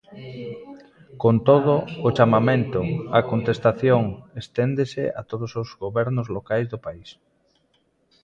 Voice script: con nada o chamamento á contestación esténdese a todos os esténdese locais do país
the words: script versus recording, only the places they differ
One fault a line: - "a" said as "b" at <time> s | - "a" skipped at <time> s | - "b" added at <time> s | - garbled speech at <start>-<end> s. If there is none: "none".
- "nada" said as "todo" at 1.5 s
- "esténdese" said as "gobernos" at 5.8 s